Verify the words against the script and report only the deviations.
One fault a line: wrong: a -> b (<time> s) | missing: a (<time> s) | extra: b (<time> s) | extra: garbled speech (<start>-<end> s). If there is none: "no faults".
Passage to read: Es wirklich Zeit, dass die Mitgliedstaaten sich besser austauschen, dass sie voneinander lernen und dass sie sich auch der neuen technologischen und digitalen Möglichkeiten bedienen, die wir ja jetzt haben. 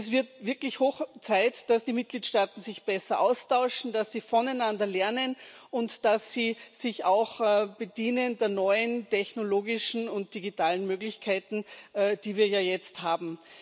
extra: wird (0.1 s)